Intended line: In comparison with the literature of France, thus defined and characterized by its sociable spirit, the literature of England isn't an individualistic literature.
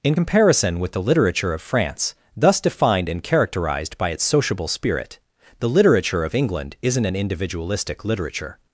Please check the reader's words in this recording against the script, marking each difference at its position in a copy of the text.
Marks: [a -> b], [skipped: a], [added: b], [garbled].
In comparison with the literature of France, thus defined and characterized by its sociable spirit, the literature of England isn't an individualistic literature.